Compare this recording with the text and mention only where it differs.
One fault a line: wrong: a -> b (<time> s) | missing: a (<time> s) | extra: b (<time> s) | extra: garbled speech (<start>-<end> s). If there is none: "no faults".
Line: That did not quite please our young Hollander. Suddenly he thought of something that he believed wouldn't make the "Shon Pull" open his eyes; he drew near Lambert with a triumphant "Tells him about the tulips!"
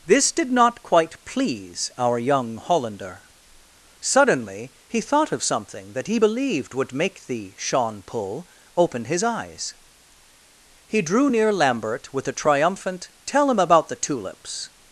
wrong: That -> This (0.1 s)
wrong: wouldn't -> would (6.7 s)
wrong: Tells -> Tell (13.3 s)